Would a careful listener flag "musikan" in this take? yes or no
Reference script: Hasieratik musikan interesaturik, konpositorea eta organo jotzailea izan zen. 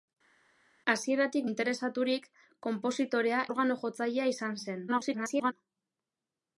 yes